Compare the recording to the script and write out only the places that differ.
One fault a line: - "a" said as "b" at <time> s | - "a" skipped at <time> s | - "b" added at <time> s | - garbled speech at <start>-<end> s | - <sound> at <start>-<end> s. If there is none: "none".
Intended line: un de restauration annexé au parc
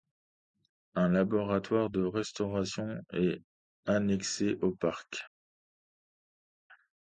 - "laboratoire" added at 1.1 s
- "est" added at 3.1 s